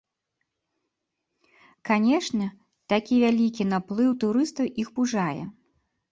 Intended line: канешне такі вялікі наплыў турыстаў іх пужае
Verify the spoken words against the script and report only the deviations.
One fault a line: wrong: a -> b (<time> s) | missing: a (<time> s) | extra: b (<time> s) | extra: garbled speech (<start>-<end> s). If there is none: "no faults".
no faults